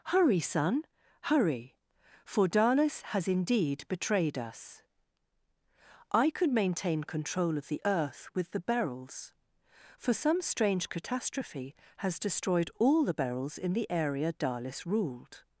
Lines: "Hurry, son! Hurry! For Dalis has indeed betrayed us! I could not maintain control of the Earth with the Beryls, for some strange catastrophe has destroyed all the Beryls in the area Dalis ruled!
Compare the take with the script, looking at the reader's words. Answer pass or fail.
fail